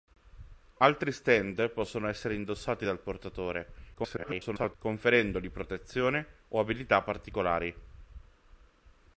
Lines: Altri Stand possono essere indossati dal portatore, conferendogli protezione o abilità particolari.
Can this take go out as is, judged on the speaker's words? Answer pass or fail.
fail